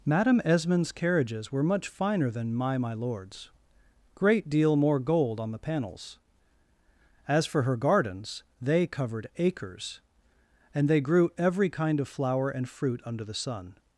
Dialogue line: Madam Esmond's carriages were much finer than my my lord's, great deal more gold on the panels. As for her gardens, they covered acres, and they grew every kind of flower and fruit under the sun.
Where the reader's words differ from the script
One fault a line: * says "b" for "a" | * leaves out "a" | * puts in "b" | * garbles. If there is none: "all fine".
all fine